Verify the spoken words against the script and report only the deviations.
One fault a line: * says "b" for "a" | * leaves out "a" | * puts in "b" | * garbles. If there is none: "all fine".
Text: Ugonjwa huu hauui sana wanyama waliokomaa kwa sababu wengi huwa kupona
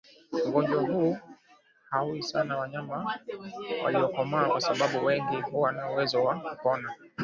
* puts in "na uwezo wa"